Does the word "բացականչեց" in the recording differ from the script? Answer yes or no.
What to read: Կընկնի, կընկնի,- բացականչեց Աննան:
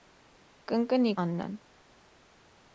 yes